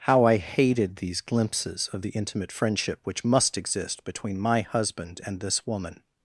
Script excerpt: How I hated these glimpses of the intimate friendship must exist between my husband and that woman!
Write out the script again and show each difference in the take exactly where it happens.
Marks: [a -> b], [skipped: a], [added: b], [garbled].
How I hated these glimpses of the intimate friendship [added: which] must exist between my husband and [that -> this] woman!